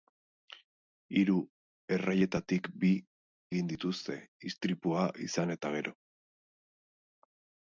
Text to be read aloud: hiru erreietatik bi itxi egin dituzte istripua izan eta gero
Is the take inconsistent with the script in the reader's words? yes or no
yes